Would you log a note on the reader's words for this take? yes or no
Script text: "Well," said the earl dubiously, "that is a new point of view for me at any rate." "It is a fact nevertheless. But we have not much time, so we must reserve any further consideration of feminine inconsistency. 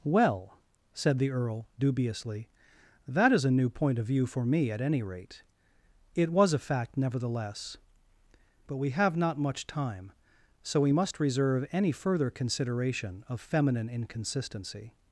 yes